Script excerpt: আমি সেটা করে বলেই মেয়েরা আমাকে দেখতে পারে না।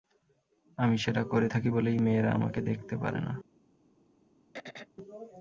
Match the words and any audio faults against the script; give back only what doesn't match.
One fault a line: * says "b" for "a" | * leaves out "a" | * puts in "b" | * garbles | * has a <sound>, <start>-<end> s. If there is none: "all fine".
* puts in "থাকি"
* has a throat clearing, 4.5-4.9 s